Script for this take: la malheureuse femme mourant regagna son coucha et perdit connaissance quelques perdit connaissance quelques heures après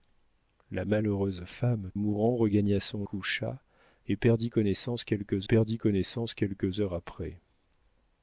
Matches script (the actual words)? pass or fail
pass